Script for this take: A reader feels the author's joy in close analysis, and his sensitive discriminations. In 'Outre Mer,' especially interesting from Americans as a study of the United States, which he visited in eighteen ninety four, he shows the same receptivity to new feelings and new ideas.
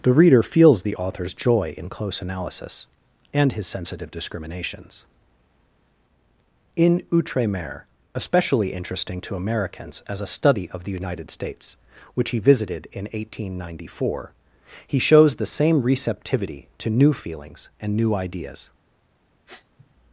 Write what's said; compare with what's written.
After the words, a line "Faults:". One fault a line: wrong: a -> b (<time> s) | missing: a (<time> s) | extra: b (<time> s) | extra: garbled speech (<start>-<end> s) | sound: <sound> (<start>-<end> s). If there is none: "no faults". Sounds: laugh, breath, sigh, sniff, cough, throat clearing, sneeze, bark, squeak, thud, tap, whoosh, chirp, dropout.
The reader feels the author's joy in close analysis, and his sensitive discriminations. In 'Outre Mer,' especially interesting to Americans as a study of the United States, which he visited in eighteen ninety four, he shows the same receptivity to new feelings and new ideas.
Faults:
wrong: A -> The (0.0 s)
wrong: from -> to (9.2 s)
sound: sniff (19.5-19.9 s)